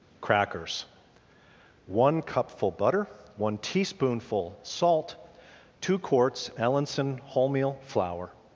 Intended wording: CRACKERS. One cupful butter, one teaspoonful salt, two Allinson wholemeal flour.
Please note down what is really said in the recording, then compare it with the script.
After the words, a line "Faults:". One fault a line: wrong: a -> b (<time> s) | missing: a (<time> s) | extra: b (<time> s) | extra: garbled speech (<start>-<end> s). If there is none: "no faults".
CRACKERS. One cupful butter, one teaspoonful salt, two quarts Allinson wholemeal flour.
Faults:
extra: quarts (6.0 s)